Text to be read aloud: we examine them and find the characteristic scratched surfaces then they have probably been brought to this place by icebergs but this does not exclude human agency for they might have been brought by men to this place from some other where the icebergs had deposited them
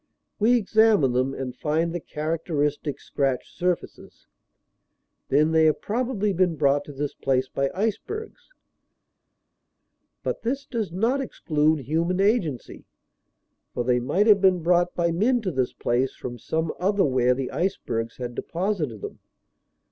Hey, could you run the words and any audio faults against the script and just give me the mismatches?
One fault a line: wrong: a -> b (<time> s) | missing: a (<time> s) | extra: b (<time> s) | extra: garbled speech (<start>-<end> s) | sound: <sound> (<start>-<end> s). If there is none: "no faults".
no faults